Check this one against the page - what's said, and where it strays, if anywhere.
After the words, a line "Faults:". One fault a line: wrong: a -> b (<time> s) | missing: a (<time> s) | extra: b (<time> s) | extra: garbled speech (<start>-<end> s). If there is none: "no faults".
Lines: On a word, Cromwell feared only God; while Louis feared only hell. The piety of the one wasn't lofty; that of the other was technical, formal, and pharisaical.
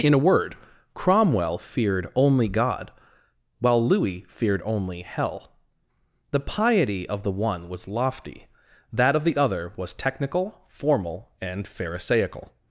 In a word, Cromwell feared only God; while Louis feared only hell. The piety of the one was lofty; that of the other was technical, formal, and pharisaical.
Faults:
wrong: On -> In (0.0 s)
wrong: wasn't -> was (7.7 s)